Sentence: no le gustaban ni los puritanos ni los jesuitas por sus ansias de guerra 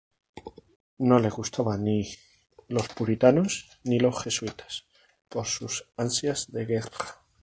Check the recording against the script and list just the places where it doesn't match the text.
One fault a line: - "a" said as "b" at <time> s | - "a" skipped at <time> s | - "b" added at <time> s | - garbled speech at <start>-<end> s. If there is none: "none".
none